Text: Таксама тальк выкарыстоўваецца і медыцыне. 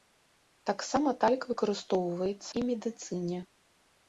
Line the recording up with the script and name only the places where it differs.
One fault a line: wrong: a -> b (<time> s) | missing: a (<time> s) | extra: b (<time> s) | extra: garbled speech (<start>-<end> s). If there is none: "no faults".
no faults